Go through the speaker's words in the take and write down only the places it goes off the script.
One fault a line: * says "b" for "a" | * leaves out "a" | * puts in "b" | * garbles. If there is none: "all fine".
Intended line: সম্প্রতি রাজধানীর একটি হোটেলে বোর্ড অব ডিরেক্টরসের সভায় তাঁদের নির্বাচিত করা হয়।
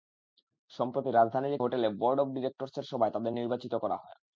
* leaves out "একটি"